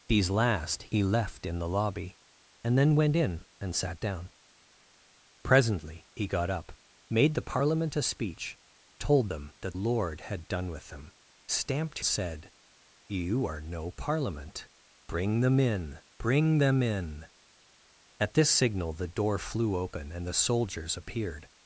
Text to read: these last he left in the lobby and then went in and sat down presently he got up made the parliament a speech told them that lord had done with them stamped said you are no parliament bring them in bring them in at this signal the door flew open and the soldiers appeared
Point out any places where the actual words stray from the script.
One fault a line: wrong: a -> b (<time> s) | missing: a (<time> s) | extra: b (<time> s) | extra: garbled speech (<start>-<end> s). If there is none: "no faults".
no faults